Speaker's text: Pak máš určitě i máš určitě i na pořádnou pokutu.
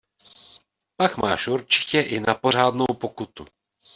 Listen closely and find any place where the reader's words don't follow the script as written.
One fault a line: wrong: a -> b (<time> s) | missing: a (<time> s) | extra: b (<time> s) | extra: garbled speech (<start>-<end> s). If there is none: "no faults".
missing: máš určitě i (2.2 s)